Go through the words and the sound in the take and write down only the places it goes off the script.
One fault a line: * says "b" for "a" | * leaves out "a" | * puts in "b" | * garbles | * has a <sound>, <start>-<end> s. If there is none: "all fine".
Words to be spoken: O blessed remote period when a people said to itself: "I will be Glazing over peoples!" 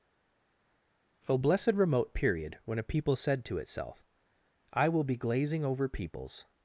all fine